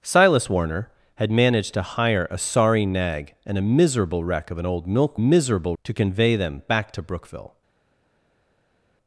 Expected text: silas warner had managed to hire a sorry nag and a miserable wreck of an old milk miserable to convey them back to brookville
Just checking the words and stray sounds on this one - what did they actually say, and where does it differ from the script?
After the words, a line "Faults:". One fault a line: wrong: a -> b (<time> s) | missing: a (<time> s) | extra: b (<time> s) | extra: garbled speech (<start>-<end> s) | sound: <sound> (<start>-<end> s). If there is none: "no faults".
silas warner had managed to hire a sorry nag and a miserable wreck of an old milk miserable to convey them back to brookville
Faults:
no faults